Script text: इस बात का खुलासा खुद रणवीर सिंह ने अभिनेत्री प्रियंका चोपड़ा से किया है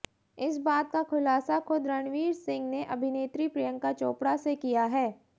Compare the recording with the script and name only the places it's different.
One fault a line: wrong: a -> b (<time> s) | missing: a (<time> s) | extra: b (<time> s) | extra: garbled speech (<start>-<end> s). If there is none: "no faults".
no faults